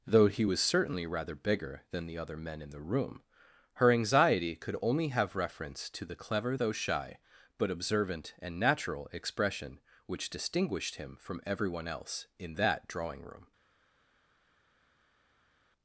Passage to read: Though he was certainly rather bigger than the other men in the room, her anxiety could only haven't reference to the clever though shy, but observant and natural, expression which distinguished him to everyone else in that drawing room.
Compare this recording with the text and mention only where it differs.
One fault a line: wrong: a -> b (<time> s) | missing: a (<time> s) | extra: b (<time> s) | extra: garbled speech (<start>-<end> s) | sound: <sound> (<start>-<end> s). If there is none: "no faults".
wrong: haven't -> have (5.1 s)
wrong: to -> from (11.2 s)